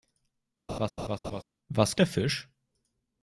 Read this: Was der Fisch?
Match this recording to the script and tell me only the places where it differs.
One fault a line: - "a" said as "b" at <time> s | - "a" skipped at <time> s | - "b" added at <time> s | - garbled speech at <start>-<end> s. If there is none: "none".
none